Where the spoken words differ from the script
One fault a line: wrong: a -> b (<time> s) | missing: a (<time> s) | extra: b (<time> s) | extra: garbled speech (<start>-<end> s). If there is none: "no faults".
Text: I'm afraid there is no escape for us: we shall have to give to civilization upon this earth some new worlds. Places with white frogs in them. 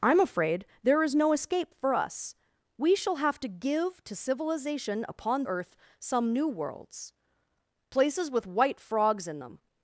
missing: this (5.4 s)